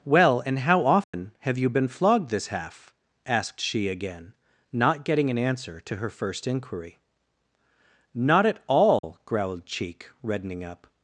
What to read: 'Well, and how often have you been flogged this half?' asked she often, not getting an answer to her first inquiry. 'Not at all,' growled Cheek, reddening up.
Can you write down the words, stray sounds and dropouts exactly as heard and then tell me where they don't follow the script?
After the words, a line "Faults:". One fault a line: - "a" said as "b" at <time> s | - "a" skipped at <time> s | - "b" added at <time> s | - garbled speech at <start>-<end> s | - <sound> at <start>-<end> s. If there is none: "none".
'Well, and how often have you been flogged this half?' asked she again, not getting an answer to her first inquiry. 'Not at all,' growled Cheek, reddening up.
Faults:
- dropout at 1.0-1.1 s
- "often" said as "again" at 3.9 s
- dropout at 9.0-9.0 s